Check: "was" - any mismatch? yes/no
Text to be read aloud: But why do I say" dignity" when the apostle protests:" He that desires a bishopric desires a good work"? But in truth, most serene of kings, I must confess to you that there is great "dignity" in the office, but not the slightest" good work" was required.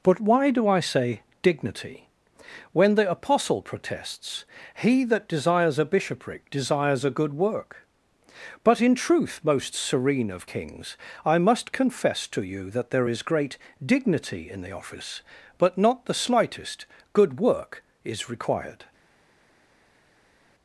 yes